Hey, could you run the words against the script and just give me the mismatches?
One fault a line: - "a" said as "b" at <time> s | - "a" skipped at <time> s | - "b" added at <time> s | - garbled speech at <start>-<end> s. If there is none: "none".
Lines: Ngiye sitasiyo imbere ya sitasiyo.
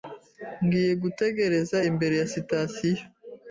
- "sitasiyo" said as "gutegereza" at 1.0 s